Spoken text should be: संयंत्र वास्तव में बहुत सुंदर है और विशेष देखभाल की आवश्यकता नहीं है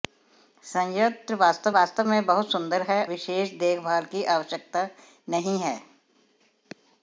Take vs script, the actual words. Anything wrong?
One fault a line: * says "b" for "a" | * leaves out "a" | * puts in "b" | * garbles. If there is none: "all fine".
* puts in "वास्तव"
* leaves out "और"